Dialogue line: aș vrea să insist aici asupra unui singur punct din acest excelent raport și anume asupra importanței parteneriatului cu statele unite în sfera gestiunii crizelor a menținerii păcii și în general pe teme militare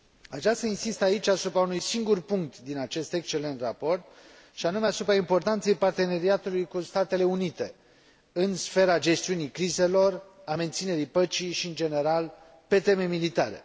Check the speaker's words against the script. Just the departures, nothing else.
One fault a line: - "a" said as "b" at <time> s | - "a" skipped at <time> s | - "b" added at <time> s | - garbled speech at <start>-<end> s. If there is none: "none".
none